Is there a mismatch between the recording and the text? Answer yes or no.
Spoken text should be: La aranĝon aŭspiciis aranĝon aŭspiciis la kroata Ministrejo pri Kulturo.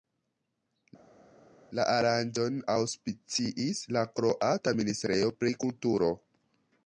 yes